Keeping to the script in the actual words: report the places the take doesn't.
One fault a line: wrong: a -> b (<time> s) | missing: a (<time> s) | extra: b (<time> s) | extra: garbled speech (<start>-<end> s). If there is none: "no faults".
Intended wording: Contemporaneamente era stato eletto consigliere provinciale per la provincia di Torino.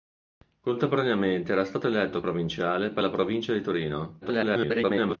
missing: consigliere (2.2 s)
extra: garbled speech (4.2-5.2 s)